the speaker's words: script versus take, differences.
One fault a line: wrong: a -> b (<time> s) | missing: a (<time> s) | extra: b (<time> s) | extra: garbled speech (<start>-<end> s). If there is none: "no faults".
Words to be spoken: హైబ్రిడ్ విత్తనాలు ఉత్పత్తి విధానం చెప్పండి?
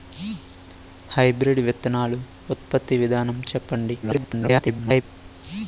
extra: garbled speech (4.0-5.0 s)